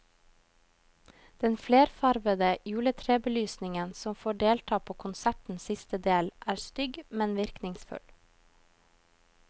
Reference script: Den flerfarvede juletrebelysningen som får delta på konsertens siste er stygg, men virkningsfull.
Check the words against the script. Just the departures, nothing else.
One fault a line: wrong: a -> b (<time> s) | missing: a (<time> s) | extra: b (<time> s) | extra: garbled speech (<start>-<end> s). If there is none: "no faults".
extra: del (6.1 s)